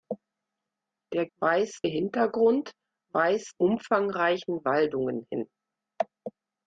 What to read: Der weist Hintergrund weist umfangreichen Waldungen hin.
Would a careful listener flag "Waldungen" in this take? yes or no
no